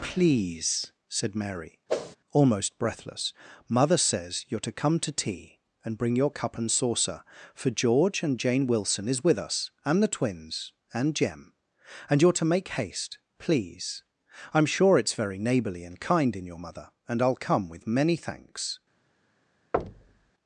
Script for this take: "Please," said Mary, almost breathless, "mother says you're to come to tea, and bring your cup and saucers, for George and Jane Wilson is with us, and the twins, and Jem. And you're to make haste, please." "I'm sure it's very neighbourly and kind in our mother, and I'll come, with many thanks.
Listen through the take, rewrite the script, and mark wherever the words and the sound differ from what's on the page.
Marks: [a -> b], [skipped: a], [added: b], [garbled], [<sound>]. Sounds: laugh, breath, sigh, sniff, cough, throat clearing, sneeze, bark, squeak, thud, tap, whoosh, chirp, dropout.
"Please," said Mary, [whoosh] almost breathless, "mother says you're to come to tea, and bring your cup and [saucers, -> saucer] for George and Jane Wilson is with us, and the twins, and Jem. And you're to make haste, please." "I'm sure it's very neighbourly and kind in [our -> your] mother, and I'll come, with many thanks. [thud]